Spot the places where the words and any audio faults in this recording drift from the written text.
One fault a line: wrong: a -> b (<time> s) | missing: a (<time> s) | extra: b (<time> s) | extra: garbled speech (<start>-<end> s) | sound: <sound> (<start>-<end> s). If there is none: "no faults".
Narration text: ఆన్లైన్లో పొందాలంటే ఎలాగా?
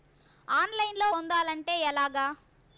no faults